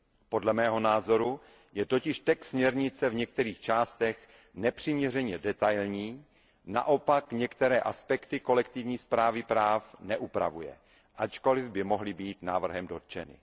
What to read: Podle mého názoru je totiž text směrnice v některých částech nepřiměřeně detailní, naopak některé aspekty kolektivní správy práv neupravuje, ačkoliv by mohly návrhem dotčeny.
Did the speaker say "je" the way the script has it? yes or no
yes